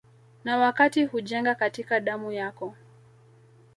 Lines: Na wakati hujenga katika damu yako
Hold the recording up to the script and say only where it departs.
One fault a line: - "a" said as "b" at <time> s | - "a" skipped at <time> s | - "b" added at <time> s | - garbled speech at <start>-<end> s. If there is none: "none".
none